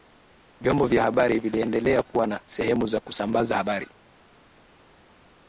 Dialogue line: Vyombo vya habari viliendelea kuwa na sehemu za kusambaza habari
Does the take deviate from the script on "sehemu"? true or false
false